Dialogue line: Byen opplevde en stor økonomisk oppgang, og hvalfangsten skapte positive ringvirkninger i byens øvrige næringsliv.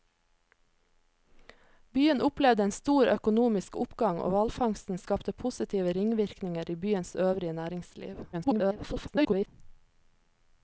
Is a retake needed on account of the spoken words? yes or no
yes